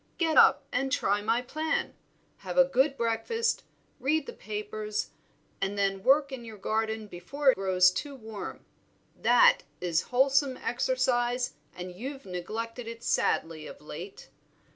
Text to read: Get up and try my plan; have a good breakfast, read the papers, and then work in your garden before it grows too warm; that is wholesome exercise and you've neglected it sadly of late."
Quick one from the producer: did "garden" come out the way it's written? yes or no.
yes